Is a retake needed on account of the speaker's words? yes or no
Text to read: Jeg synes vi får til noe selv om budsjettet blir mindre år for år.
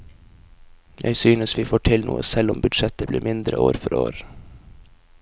no